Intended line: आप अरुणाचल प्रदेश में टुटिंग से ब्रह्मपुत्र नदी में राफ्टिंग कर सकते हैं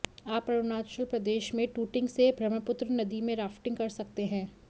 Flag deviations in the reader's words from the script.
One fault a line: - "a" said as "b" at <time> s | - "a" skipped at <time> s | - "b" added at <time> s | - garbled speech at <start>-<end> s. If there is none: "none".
none